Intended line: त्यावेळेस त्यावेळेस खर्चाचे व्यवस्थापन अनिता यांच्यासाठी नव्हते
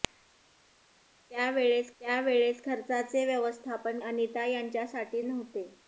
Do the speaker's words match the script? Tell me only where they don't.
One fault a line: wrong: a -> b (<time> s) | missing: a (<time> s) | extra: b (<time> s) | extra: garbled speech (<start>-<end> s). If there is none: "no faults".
no faults